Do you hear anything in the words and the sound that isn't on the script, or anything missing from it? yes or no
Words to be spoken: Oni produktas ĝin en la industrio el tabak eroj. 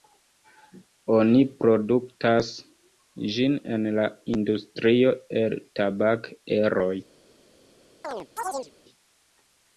yes